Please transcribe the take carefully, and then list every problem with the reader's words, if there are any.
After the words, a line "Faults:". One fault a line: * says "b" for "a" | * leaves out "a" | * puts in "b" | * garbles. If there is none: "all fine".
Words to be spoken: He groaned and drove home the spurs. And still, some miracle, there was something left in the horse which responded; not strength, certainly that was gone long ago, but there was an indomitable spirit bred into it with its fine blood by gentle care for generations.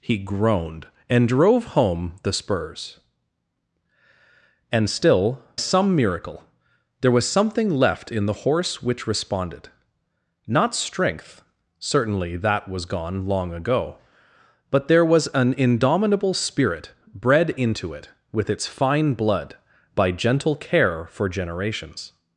He groaned and drove home the spurs. And still, some miracle, there was something left in the horse which responded; not strength, certainly that was gone long ago, but there was an indomitable spirit bred into it with its fine blood by gentle care for generations.
Faults:
all fine